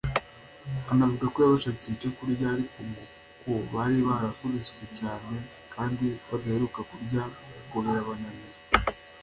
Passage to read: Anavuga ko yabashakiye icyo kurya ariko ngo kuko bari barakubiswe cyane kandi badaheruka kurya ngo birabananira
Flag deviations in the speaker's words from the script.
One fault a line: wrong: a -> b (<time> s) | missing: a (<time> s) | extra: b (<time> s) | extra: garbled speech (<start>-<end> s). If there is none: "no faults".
no faults